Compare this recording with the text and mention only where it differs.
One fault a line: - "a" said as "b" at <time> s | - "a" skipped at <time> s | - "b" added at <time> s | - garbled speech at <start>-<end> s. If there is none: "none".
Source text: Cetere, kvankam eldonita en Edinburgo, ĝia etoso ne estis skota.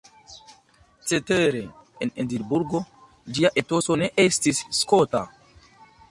- "kvankam eldonita" skipped at 1.6 s